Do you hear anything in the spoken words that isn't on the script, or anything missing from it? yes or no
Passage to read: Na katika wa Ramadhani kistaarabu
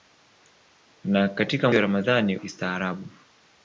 no